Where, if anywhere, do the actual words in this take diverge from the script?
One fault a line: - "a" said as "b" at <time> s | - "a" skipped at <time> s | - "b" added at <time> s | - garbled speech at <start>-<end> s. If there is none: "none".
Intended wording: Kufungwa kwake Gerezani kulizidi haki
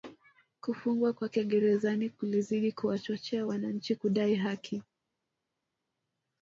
- "kuwachochea wananchi kudai" added at 2.7 s